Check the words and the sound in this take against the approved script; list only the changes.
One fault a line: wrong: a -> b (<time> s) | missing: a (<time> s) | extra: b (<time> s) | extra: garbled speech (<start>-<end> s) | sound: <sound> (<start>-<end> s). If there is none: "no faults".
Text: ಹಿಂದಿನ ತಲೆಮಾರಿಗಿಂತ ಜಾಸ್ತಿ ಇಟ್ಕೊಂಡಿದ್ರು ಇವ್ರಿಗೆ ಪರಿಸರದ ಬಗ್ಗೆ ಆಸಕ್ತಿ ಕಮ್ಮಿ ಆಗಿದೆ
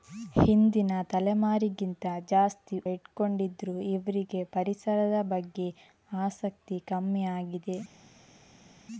no faults